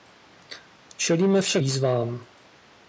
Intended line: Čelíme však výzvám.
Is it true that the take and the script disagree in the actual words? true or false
false